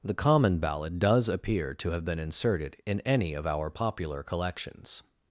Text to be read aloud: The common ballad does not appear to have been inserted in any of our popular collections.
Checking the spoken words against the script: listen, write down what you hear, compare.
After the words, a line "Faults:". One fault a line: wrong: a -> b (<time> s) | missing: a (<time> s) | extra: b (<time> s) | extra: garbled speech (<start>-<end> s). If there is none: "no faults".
The common ballad does appear to have been inserted in any of our popular collections.
Faults:
missing: not (1.3 s)